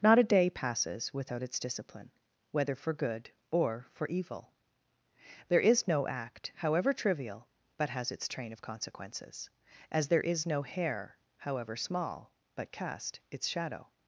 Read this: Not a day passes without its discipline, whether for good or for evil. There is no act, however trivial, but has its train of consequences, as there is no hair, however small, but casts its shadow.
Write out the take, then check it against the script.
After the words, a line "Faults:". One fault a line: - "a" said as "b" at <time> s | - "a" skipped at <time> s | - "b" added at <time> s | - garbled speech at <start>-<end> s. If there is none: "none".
Not a day passes without its discipline, whether for good or for evil. There is no act, however trivial, but has its train of consequences, as there is no hair, however small, but cast its shadow.
Faults:
- "casts" said as "cast" at 12.7 s